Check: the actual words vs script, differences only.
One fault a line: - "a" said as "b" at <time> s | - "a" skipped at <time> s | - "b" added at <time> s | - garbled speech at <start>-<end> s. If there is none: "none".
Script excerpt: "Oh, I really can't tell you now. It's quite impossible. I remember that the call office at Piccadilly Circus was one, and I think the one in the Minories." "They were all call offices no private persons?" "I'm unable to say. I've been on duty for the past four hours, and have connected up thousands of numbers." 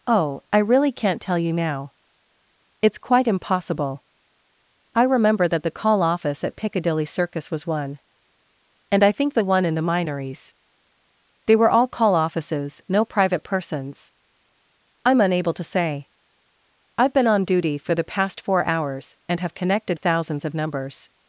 - "up" skipped at 20.0 s